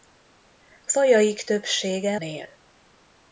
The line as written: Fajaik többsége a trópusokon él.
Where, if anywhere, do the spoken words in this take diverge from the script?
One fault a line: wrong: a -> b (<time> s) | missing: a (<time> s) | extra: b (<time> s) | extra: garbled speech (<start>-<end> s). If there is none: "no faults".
missing: a trópusokon (2.2 s)